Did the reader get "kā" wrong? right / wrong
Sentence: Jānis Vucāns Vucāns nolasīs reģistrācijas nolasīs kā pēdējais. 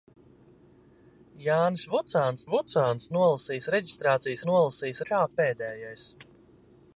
right